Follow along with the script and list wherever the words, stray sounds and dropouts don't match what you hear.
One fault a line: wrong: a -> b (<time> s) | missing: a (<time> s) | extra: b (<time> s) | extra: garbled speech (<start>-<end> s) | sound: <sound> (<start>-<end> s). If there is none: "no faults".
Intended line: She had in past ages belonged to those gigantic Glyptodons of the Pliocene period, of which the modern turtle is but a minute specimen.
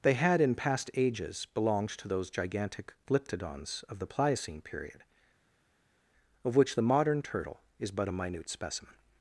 wrong: She -> They (0.0 s)